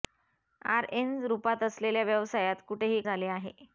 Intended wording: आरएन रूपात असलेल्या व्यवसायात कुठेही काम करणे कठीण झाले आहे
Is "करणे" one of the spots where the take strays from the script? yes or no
yes